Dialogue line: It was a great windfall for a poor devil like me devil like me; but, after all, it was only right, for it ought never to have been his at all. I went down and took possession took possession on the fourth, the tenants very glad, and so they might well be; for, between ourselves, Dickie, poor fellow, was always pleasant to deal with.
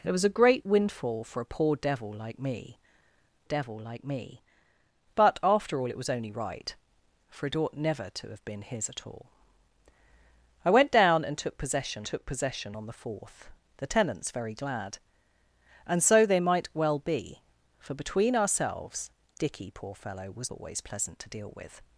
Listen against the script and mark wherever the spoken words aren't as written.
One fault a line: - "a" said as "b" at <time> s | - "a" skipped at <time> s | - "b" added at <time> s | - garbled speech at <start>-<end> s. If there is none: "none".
none